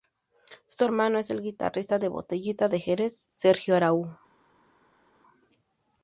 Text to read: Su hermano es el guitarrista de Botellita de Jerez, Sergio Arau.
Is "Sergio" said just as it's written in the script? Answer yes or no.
yes